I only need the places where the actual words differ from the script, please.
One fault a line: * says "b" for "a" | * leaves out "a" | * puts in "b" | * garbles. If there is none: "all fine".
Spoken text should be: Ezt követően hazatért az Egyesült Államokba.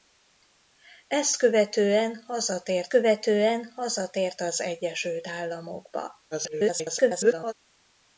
* puts in "követően hazatért"
* garbles